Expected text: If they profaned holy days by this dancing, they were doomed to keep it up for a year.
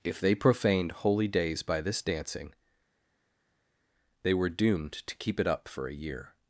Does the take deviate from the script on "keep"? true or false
false